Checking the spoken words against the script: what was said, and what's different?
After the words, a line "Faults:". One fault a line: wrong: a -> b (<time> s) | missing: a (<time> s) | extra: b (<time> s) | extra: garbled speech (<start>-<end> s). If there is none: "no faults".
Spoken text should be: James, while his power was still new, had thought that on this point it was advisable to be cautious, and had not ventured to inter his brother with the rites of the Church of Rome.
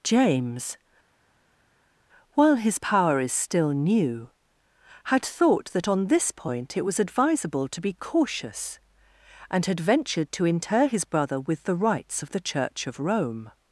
James, while his power is still new, had thought that on this point it was advisable to be cautious, and had ventured to inter his brother with the rites of the Church of Rome.
Faults:
wrong: was -> is (3.2 s)
missing: not (9.8 s)